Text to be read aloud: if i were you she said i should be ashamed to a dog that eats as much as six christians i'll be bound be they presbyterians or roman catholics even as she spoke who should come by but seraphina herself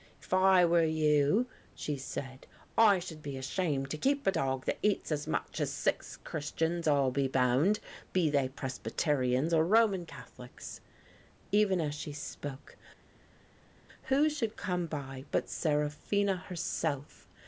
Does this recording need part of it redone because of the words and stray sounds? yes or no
yes